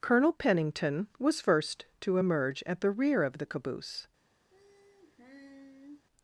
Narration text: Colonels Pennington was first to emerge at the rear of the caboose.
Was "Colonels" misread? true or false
true